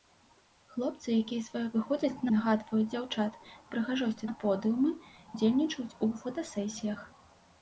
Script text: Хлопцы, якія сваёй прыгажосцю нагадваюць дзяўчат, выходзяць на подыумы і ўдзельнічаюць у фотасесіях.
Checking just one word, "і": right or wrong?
wrong